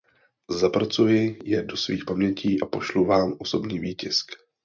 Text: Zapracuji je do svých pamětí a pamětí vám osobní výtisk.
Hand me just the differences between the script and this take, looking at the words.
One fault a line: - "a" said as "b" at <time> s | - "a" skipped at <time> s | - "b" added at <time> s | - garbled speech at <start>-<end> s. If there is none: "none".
- "pamětí" said as "pošlu" at 2.6 s